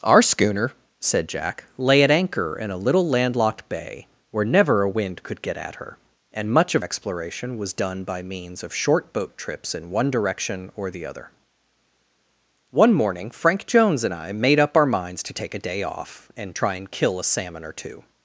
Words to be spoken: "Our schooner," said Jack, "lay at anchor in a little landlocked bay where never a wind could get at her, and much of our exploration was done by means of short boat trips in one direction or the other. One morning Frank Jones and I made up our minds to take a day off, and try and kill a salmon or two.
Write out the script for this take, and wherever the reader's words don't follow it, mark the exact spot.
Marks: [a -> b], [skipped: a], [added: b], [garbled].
"Our schooner," said Jack, "lay at anchor in a little landlocked bay where never a wind could get at her, and much of [skipped: our] exploration was done by means of short boat trips in one direction or the other. One morning Frank Jones and I made up our minds to take a day off, and try and kill a salmon or two.